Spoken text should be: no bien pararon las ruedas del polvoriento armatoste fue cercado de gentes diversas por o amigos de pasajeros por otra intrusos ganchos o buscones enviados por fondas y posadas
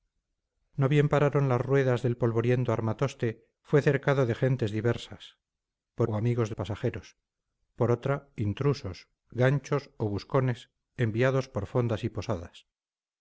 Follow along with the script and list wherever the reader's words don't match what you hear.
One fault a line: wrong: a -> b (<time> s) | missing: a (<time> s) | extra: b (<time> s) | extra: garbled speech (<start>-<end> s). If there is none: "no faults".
no faults